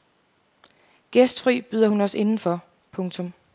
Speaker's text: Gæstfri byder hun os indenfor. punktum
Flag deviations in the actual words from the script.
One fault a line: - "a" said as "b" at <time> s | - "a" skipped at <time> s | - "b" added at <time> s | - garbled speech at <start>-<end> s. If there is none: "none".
none